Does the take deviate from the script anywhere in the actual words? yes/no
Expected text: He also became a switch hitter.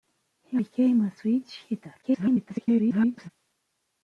yes